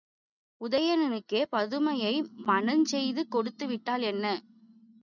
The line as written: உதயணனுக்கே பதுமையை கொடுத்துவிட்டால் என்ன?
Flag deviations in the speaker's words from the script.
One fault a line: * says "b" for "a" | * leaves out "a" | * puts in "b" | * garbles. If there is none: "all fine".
* puts in "மணஞ்செய்து"